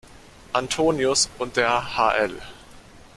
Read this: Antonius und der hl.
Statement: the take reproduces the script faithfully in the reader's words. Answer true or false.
true